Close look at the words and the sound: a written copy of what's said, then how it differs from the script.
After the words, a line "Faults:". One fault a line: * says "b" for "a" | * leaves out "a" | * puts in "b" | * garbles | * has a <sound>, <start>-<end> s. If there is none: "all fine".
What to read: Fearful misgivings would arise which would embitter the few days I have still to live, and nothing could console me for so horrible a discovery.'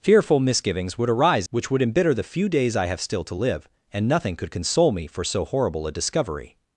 Fearful misgivings would arise which would embitter the few days I have still to live, and nothing could console me for so horrible a discovery.'
Faults:
all fine